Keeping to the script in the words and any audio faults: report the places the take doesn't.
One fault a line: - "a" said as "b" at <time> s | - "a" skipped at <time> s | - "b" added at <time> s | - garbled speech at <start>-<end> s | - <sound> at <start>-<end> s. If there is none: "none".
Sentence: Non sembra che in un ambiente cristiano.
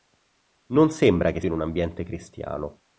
none